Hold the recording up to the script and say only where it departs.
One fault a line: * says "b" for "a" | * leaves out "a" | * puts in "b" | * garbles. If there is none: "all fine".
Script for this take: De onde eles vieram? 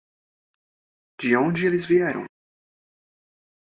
all fine